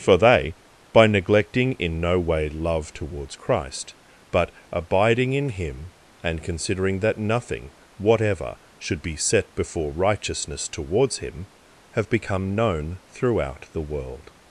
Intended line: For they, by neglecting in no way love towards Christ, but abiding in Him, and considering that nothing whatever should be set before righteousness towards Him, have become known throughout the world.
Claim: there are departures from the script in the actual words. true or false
false